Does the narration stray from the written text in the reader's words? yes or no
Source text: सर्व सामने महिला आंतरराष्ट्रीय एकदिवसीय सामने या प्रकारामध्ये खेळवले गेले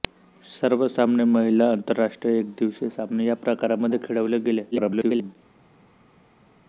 yes